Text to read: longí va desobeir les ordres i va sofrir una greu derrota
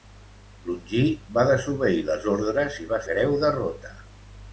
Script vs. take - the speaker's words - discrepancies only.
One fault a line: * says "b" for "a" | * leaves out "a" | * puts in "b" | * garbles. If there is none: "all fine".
* leaves out "sofrir una"